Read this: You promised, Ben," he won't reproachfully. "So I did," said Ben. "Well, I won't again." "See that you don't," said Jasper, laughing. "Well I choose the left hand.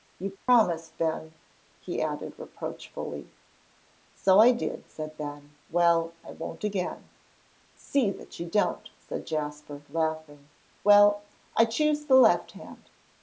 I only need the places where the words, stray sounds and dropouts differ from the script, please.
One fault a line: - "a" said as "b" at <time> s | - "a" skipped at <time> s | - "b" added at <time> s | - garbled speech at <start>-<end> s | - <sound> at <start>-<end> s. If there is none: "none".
- dropout at 0.4-0.5 s
- "won't" said as "added" at 2.0 s